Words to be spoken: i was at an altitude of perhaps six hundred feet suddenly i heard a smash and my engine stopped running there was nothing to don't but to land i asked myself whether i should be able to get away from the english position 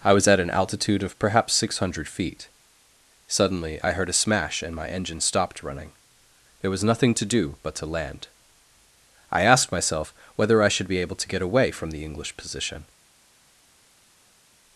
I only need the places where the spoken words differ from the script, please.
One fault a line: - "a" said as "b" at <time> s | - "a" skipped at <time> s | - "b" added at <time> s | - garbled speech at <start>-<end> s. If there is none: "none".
- "don't" said as "do" at 7.2 s